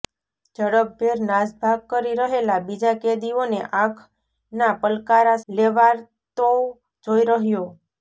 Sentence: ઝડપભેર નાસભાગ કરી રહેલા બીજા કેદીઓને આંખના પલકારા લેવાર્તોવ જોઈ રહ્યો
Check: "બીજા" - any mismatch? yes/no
no